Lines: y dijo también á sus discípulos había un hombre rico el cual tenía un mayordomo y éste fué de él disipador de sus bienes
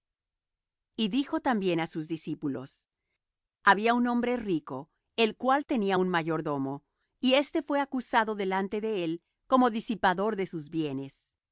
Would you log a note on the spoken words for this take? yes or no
yes